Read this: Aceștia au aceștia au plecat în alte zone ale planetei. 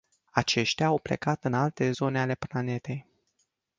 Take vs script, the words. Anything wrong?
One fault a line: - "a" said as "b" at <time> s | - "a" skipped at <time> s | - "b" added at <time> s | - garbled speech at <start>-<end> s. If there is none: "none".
- "aceștia au" skipped at 1.0 s